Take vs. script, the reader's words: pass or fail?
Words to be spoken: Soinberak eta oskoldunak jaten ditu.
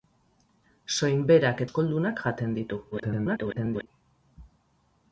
fail